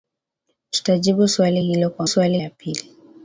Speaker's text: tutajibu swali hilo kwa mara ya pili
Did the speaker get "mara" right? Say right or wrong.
wrong